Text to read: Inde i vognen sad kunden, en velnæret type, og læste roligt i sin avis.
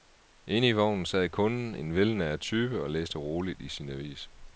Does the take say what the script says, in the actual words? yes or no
yes